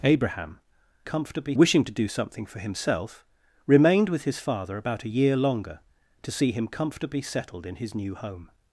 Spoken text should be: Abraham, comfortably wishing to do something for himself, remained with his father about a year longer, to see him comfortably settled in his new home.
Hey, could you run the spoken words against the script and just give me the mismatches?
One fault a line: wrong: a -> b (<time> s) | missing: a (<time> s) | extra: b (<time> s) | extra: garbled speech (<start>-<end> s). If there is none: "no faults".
no faults